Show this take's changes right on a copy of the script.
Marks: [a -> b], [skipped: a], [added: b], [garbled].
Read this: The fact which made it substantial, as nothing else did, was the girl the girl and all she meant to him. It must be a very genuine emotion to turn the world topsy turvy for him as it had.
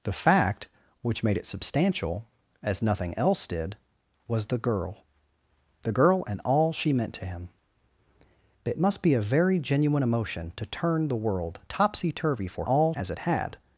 The fact which made it substantial, as nothing else did, was the girl the girl and all she meant to him. It must be a very genuine emotion to turn the world topsy turvy for [him -> all] as it had.